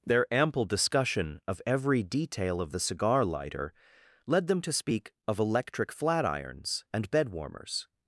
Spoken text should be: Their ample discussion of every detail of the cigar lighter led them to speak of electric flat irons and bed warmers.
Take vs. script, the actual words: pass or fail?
pass